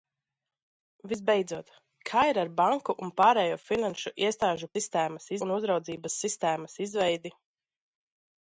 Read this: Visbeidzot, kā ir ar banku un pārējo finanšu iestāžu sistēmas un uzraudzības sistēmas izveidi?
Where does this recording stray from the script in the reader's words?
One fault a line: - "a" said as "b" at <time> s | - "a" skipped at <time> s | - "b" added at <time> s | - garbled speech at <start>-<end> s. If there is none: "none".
none